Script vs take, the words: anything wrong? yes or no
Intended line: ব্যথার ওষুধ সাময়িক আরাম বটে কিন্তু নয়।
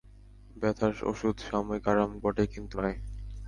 no